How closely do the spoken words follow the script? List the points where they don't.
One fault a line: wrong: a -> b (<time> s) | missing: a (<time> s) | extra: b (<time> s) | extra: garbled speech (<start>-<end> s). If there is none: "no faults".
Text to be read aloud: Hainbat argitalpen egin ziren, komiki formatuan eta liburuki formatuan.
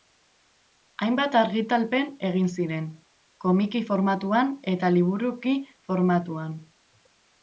no faults